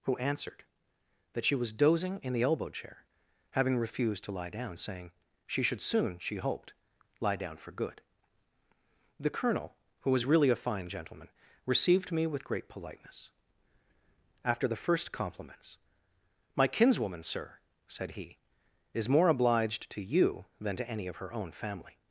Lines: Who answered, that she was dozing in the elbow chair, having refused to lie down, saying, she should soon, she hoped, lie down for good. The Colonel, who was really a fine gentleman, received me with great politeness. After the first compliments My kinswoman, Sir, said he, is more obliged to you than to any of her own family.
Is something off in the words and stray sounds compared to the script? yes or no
no